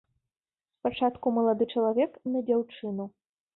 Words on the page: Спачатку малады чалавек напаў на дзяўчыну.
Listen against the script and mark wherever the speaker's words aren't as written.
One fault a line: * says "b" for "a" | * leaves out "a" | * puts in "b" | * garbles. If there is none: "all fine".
* leaves out "напаў"